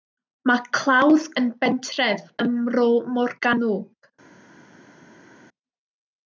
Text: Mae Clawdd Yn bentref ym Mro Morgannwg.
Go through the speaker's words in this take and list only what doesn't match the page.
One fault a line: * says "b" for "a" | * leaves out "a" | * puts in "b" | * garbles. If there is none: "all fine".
all fine